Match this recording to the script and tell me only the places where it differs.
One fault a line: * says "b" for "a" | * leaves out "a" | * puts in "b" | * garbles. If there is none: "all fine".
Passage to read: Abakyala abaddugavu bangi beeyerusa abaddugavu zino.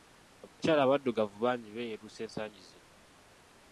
* says "ensangi" for "abaddugavu"